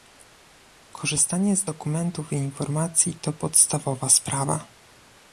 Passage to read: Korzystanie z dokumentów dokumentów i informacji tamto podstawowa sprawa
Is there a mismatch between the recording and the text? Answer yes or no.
yes